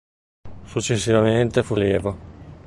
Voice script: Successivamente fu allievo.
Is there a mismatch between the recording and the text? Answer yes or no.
no